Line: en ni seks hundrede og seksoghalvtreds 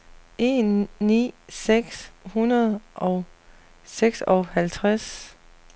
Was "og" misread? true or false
false